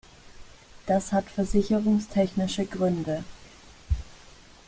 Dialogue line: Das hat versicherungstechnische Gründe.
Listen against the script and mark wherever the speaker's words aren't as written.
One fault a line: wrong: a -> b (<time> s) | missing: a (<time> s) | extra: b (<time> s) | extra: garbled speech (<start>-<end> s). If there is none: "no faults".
no faults